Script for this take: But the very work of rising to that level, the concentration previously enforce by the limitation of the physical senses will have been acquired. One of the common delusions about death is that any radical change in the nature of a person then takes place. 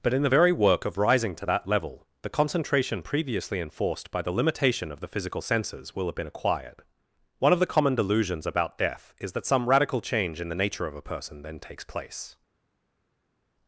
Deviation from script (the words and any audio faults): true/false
true